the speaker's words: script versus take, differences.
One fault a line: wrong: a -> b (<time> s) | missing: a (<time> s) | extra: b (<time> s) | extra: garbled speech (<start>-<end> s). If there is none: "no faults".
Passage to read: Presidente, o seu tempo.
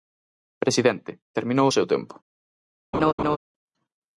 extra: terminou (1.4 s)